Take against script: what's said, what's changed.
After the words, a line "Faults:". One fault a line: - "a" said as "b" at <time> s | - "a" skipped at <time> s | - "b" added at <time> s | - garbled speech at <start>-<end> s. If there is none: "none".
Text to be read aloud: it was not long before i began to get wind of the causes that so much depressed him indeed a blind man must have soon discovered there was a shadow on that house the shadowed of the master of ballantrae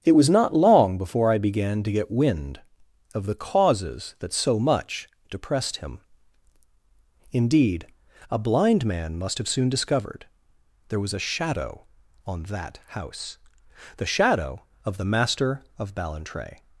it was not long before i began to get wind of the causes that so much depressed him indeed a blind man must have soon discovered there was a shadow on that house the shadow of the master of ballantrae
Faults:
- "shadowed" said as "shadow" at 14.1 s